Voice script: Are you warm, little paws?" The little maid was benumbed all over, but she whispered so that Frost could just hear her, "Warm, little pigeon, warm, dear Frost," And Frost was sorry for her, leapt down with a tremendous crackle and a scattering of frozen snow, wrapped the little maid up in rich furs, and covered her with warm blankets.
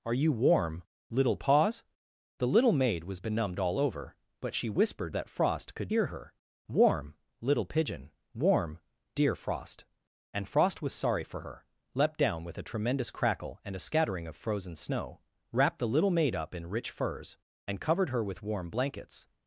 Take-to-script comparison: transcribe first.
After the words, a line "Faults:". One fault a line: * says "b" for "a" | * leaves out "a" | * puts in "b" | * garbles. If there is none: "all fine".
Are you warm, little paws?" The little maid was benumbed all over, but she whispered that Frost could hear her, "Warm, little pigeon, warm, dear Frost," And Frost was sorry for her, leapt down with a tremendous crackle and a scattering of frozen snow, wrapped the little maid up in rich furs, and covered her with warm blankets.
Faults:
* leaves out "so"
* leaves out "just"